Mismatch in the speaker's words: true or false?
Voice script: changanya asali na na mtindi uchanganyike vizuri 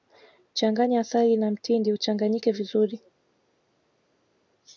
true